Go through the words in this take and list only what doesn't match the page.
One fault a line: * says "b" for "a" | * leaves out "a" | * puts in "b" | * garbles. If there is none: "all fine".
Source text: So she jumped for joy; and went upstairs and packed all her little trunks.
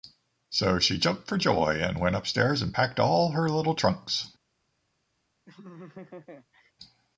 all fine